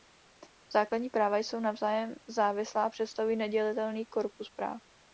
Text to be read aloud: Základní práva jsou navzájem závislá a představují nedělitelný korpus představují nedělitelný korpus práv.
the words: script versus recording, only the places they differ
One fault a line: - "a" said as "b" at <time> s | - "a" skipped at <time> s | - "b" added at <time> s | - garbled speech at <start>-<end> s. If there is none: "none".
- "představují nedělitelný korpus" skipped at 4.5 s